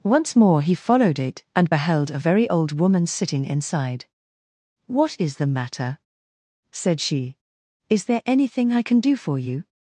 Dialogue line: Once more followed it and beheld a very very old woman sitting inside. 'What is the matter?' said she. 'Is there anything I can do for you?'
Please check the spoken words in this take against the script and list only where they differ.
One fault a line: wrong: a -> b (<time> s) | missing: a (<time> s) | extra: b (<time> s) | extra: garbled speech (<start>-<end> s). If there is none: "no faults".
extra: he (0.6 s)
missing: very (2.5 s)